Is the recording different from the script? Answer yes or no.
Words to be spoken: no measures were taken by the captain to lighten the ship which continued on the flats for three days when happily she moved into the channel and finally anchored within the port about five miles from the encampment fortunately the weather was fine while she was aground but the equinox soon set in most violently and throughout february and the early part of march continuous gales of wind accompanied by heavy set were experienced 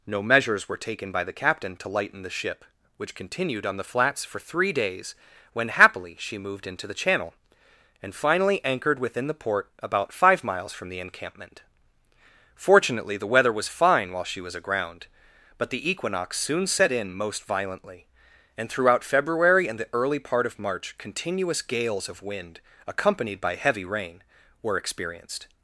yes